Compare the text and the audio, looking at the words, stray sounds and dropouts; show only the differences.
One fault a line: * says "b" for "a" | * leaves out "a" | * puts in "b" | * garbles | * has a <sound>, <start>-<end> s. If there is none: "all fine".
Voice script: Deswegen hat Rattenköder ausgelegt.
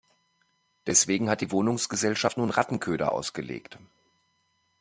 * puts in "die Wohnungsgesellschaft nun"